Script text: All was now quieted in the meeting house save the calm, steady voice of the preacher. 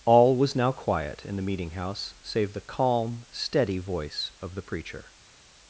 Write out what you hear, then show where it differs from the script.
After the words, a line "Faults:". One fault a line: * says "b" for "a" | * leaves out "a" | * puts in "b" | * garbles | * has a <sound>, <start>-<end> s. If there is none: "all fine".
All was now quiet in the meeting house save the calm, steady voice of the preacher.
Faults:
* says "quiet" for "quieted"